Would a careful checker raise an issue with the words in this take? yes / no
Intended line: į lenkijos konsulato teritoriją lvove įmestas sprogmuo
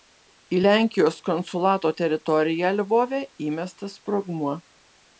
no